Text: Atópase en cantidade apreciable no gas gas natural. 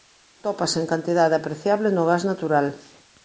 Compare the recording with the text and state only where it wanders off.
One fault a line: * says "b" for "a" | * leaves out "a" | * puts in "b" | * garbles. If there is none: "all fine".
* leaves out "gas"